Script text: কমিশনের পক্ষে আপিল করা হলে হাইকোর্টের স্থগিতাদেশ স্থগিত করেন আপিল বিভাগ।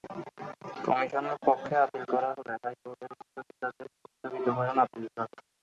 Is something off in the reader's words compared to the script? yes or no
no